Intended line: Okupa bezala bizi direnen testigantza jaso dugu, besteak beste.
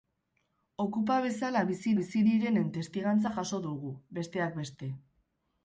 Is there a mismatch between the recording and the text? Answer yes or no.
yes